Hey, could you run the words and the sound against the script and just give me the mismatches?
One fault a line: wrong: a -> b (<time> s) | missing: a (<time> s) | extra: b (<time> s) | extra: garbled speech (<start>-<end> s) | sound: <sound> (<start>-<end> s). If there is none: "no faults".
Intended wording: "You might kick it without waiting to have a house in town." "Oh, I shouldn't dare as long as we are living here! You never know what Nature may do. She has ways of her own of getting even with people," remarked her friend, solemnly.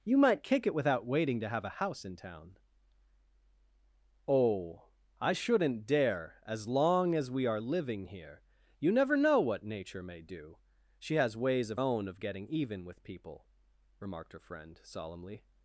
missing: her (11.8 s)